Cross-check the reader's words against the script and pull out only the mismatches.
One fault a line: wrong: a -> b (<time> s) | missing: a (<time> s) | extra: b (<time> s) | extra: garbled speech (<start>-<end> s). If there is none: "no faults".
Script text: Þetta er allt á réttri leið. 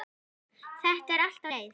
missing: réttri (1.5 s)